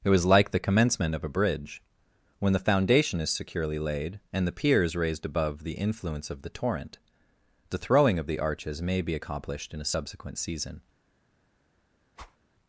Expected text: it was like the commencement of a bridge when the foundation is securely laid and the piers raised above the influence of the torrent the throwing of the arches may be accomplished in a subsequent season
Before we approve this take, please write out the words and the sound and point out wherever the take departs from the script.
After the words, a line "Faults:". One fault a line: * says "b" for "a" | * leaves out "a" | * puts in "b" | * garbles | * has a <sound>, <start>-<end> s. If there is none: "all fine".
it was like the commencement of a bridge when the foundation is securely laid and the piers raised above the influence of the torrent the throwing of the arches may be accomplished in a subsequent season
Faults:
* has a whoosh, 12.2-12.4 s